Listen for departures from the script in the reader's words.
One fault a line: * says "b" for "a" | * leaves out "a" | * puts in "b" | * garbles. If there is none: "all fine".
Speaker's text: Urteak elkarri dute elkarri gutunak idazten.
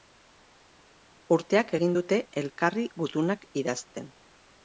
* says "egin" for "elkarri"